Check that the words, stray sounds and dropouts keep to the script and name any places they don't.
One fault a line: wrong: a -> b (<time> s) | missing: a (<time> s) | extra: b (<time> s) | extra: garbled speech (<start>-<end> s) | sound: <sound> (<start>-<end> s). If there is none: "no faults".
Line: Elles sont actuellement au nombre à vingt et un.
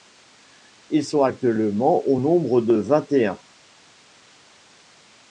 wrong: Elles -> Ils (0.9 s)
wrong: à -> de (2.6 s)